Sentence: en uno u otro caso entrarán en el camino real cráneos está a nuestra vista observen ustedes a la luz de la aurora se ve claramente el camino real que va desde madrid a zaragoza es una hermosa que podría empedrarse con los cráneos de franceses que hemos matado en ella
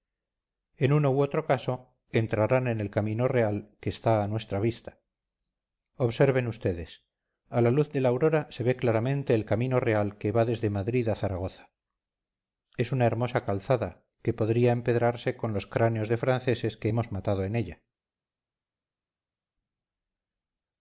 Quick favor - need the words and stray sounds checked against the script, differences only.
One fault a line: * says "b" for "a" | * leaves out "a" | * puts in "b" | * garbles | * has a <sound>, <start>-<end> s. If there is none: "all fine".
* says "que" for "cráneos"
* puts in "calzada"